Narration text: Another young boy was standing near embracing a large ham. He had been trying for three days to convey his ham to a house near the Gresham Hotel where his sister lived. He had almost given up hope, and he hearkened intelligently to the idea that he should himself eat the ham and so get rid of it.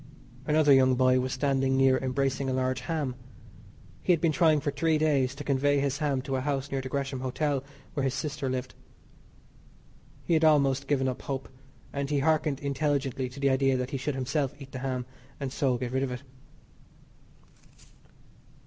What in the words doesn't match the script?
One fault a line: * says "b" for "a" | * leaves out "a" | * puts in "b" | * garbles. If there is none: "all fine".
all fine